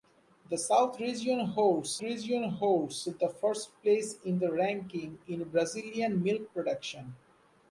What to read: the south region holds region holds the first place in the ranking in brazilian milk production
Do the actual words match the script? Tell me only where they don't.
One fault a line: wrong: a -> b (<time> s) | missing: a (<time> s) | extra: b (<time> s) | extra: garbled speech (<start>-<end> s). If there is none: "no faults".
no faults